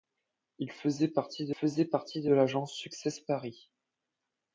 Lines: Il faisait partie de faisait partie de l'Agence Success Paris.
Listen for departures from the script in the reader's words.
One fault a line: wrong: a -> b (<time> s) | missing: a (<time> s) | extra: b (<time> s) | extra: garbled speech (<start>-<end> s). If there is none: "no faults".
no faults